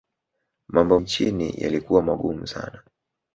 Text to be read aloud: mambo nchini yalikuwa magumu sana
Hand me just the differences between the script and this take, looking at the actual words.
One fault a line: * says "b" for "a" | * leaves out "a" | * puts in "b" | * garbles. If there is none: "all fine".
all fine